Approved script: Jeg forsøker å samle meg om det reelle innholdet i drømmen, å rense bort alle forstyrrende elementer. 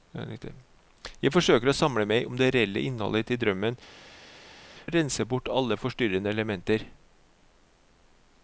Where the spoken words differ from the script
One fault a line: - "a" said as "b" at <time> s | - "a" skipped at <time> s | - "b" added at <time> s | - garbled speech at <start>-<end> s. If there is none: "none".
none